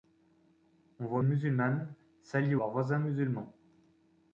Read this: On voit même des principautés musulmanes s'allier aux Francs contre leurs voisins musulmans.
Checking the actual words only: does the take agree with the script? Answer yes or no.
no